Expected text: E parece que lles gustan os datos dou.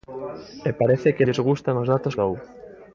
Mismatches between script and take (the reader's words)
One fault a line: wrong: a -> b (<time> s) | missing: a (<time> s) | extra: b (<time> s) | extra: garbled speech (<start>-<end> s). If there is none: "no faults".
no faults